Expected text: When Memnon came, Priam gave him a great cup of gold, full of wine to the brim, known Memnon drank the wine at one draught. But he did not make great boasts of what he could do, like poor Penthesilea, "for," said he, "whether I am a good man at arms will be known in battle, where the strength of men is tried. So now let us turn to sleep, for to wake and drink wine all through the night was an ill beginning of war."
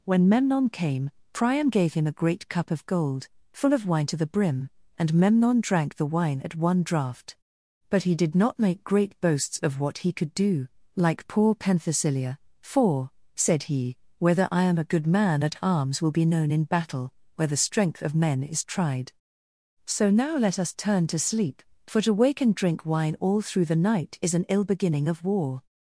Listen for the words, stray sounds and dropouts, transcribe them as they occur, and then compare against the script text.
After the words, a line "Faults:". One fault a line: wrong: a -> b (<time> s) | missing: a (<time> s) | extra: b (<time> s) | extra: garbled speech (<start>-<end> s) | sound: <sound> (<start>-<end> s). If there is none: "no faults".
When Memnon came, Priam gave him a great cup of gold, full of wine to the brim, and Memnon drank the wine at one draught. But he did not make great boasts of what he could do, like poor Penthesilea, "for," said he, "whether I am a good man at arms will be known in battle, where the strength of men is tried. So now let us turn to sleep, for to wake and drink wine all through the night is an ill beginning of war."
Faults:
wrong: known -> and (5.0 s)
wrong: was -> is (24.2 s)